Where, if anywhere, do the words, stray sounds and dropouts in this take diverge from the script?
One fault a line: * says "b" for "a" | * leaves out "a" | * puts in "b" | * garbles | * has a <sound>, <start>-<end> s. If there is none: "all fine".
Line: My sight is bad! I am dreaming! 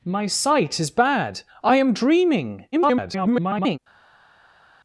* garbles